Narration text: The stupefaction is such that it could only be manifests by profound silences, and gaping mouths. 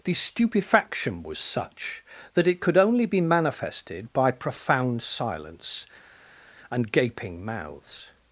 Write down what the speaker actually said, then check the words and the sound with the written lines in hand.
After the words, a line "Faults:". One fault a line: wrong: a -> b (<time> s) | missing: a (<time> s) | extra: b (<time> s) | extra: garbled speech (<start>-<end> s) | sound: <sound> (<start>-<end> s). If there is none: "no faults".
The stupefaction was such that it could only be manifested by profound silence, and gaping mouths.
Faults:
wrong: is -> was (1.2 s)
wrong: manifests -> manifested (3.2 s)
wrong: silences -> silence (5.0 s)